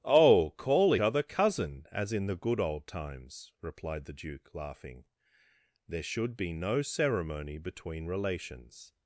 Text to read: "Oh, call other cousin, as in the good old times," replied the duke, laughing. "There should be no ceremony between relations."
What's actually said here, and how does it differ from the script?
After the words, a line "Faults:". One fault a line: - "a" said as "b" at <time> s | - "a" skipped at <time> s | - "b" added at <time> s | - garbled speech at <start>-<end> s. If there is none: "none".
"Oh, call other cousin, as in the good old times," replied the duke, laughing. "There should be no ceremony between relations."
Faults:
none